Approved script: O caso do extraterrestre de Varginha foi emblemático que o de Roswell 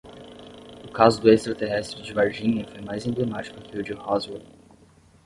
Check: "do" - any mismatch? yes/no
no